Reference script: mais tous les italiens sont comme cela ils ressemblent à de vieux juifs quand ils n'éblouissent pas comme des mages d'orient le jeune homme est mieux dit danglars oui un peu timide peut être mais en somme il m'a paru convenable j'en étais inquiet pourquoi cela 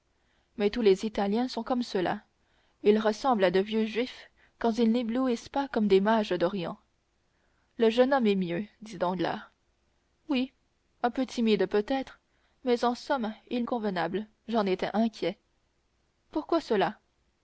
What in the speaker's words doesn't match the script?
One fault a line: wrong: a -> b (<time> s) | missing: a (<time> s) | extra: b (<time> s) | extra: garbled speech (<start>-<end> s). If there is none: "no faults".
missing: m'a paru (13.6 s)